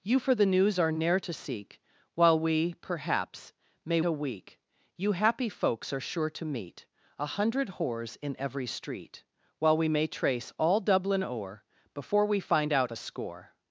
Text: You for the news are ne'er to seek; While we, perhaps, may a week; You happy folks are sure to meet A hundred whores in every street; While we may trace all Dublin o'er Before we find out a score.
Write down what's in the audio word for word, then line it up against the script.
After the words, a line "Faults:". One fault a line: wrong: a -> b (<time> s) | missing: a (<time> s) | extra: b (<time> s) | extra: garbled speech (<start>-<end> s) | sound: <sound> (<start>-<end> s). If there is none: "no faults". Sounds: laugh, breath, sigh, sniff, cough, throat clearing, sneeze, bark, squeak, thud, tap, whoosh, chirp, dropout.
You for the news are ne'er to seek; While we, perhaps, may a week; You happy folks are sure to meet A hundred whores in every street; While we may trace all Dublin o'er Before we find out a score.
Faults:
no faults